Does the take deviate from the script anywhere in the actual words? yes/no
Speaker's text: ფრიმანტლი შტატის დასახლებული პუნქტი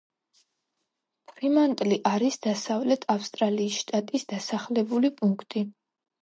yes